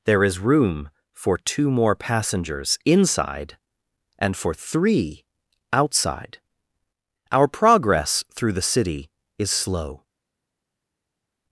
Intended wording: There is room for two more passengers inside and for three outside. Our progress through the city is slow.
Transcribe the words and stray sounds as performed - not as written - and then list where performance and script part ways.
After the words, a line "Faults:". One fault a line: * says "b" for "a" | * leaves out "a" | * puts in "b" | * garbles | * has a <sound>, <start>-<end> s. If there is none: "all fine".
There is room for two more passengers inside and for three outside. Our progress through the city is slow.
Faults:
all fine